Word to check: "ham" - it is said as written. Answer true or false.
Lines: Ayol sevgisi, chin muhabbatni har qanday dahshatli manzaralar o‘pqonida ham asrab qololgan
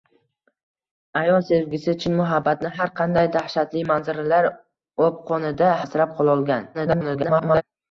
false